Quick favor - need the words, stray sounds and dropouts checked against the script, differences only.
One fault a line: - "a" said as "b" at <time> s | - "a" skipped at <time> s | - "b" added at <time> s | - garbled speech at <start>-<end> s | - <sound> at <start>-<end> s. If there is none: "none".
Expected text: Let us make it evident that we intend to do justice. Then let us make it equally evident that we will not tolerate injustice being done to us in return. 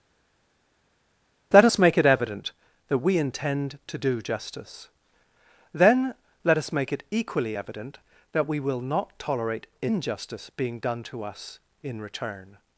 none